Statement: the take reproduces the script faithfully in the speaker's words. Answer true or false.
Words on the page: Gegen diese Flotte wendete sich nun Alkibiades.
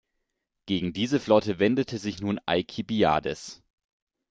true